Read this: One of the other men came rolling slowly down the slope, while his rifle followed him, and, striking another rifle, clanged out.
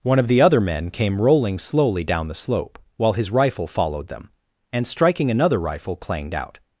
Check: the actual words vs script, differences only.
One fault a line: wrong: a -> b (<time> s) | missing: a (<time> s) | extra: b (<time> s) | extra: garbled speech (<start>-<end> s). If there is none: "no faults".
wrong: him -> them (4.1 s)